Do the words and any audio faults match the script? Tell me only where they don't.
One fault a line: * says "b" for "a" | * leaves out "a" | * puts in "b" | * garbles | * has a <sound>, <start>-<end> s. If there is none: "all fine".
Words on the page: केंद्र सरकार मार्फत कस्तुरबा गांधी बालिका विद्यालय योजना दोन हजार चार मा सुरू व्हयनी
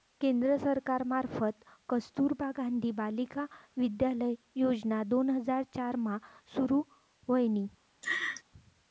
* has a laugh, 8.0-8.4 s